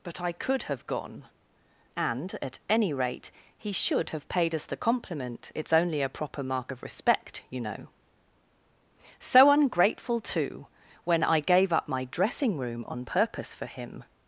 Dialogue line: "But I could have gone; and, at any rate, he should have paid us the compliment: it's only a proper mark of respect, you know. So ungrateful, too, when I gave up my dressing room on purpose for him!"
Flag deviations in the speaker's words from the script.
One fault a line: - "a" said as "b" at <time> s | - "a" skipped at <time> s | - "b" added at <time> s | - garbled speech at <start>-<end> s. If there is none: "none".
none